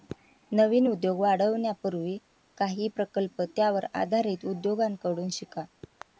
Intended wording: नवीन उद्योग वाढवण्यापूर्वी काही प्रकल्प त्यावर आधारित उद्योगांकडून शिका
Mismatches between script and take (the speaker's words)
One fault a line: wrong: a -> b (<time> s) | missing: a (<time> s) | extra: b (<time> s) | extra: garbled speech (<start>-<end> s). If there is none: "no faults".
no faults